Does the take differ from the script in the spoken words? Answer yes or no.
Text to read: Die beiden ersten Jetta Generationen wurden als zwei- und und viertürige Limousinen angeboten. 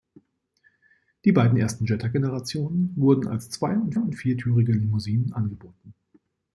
no